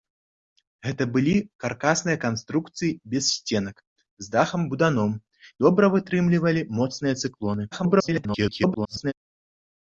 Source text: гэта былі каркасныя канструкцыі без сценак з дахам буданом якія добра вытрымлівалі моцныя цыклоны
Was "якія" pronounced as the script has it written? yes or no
no